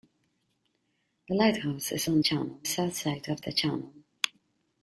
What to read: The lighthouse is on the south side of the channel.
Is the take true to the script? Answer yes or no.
no